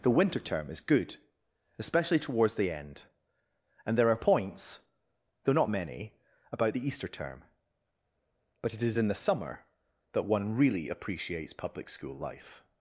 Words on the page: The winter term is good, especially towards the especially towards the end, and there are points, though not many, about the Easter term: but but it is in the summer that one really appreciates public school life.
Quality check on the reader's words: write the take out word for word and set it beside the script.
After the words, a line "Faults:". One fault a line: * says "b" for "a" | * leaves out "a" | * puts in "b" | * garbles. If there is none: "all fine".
The winter term is good, especially towards the end, and there are points, though not many, about the Easter term: but it is in the summer that one really appreciates public school life.
Faults:
* leaves out "especially towards the"
* leaves out "but"